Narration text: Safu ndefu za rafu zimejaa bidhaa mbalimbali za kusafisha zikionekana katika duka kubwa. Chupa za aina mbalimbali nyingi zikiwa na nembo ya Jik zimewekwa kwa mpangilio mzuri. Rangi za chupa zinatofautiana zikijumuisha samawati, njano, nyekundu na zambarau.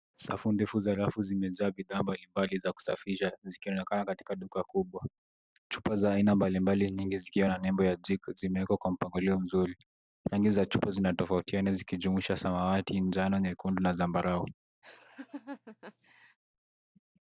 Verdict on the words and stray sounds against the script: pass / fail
fail